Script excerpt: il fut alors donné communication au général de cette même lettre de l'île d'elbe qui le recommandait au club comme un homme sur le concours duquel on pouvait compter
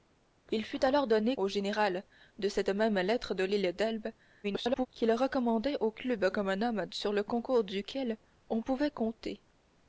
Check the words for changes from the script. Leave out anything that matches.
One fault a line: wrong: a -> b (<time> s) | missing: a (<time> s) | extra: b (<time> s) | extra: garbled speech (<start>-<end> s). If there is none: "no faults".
missing: communication (1.4 s)
extra: garbled speech (4.4-4.9 s)